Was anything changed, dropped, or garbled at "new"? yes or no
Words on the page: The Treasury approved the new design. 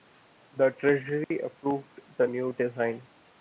no